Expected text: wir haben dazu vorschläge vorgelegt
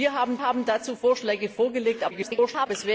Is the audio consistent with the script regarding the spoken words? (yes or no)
no